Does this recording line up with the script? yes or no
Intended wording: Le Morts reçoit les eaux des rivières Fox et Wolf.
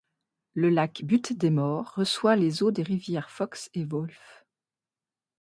no